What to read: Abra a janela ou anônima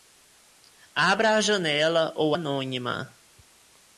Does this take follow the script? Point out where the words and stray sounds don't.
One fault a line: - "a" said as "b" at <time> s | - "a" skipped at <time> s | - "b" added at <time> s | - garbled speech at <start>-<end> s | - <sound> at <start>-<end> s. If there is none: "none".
none